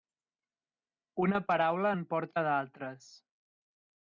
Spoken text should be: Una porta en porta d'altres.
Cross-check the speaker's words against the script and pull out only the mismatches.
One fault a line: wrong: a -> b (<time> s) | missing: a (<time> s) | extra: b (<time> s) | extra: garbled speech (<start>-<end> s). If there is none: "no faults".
wrong: porta -> paraula (1.5 s)